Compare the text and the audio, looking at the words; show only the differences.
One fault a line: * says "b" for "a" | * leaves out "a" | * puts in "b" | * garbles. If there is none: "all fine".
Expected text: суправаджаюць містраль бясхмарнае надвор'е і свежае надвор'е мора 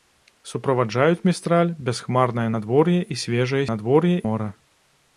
all fine